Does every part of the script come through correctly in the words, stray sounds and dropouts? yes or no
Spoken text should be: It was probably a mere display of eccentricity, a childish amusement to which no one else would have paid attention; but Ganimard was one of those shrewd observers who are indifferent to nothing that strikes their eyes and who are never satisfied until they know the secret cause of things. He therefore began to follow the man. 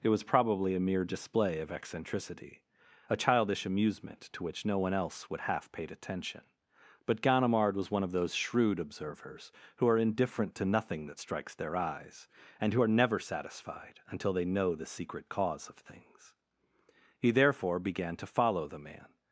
no